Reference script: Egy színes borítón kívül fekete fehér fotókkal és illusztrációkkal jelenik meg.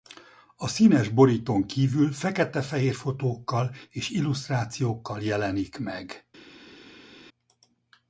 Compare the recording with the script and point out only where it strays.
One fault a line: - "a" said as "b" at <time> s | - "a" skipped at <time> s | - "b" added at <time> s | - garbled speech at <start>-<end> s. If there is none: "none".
- "Egy" said as "A" at 0.6 s